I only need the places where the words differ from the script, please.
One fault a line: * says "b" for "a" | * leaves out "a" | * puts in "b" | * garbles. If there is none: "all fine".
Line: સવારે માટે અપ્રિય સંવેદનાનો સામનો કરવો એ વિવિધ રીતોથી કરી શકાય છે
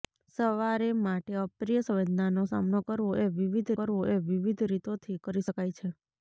* puts in "કરવો એ વિવિધ"